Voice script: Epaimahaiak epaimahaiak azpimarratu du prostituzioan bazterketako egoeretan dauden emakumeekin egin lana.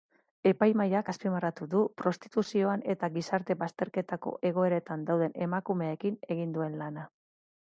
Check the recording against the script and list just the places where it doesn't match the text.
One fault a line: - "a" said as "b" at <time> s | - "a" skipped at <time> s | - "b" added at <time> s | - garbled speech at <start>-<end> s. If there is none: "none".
- "epaimahaiak" skipped at 1.1 s
- "eta gizarte" added at 2.9 s
- "duen" added at 6.6 s